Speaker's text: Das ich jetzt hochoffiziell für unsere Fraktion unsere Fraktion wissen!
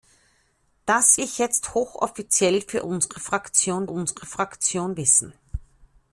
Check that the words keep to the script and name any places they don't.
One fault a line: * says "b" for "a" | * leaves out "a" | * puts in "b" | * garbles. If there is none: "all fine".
all fine